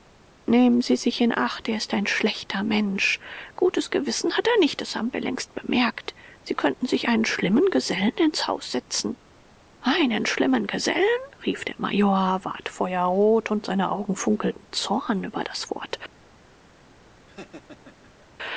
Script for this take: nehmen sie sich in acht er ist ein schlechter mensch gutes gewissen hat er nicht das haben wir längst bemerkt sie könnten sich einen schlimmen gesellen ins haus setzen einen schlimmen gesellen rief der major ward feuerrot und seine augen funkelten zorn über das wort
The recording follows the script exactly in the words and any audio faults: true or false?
false